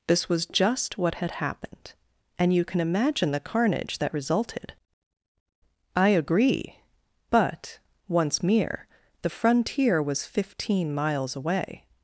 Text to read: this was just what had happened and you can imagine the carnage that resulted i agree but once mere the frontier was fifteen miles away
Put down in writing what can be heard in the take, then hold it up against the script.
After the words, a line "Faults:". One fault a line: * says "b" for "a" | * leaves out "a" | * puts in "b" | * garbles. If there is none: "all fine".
this was just what had happened and you can imagine the carnage that resulted i agree but once mere the frontier was fifteen miles away
Faults:
all fine